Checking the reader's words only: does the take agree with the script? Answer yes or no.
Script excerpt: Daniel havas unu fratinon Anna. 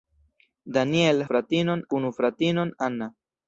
no